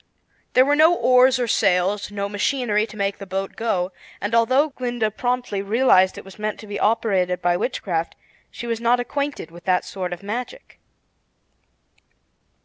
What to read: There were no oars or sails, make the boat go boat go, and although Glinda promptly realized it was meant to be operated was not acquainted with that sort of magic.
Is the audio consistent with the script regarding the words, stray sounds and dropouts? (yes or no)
no